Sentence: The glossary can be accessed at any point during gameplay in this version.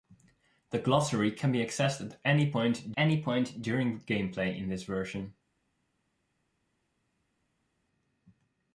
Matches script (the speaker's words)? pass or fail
fail